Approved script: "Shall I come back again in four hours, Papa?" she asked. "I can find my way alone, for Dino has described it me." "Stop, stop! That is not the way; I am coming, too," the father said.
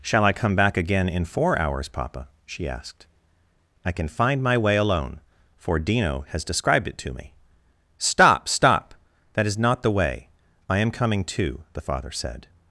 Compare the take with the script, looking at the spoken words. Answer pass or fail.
fail